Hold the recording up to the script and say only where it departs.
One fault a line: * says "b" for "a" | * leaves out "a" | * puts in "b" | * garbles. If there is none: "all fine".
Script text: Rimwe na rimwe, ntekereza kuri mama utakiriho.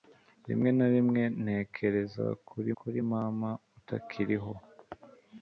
* puts in "kuri"